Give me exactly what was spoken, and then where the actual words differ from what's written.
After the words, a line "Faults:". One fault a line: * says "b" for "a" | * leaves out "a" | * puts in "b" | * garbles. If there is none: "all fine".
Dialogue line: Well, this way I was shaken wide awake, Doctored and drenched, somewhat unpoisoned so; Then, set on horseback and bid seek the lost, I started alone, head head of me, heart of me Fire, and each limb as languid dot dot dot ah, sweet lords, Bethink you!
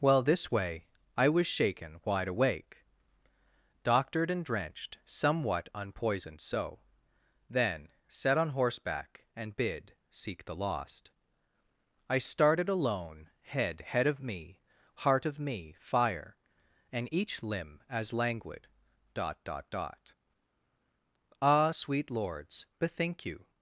Well, this way I was shaken wide awake, Doctored and drenched, somewhat unpoisoned so; Then, set on horseback and bid seek the lost, I started alone, head head of me, heart of me Fire, and each limb as languid dot dot dot ah, sweet lords, Bethink you!
Faults:
all fine